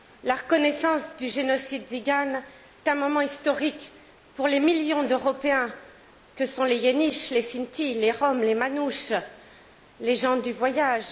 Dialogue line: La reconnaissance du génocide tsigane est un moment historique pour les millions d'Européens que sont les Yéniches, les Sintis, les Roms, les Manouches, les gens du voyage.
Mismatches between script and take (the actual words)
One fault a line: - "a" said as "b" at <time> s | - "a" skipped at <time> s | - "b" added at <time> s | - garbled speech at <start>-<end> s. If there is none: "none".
- "est" skipped at 2.4 s